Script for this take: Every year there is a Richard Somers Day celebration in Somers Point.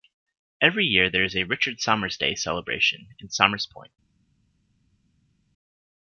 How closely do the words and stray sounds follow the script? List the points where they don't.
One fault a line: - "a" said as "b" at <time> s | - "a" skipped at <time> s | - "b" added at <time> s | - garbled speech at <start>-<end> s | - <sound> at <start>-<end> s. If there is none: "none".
none